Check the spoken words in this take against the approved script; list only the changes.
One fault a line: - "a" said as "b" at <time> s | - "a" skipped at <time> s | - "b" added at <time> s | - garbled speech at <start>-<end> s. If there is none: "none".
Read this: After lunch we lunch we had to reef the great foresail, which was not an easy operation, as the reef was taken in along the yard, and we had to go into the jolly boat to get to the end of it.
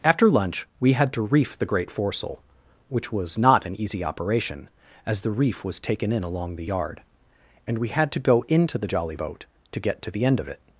- "lunch we" skipped at 0.9 s